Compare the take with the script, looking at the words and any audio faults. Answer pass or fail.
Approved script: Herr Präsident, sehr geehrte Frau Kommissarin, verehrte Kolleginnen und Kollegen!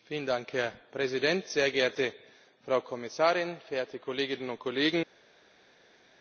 pass